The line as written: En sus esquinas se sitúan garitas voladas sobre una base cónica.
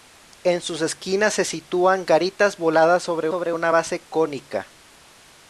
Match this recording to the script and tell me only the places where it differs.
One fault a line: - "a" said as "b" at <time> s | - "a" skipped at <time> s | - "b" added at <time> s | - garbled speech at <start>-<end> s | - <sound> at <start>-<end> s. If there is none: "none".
- "sobre" added at 3.3 s